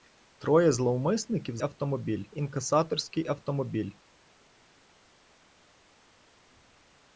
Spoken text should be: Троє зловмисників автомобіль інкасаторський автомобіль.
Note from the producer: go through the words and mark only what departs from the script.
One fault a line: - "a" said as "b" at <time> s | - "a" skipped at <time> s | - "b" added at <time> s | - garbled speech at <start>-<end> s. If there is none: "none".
none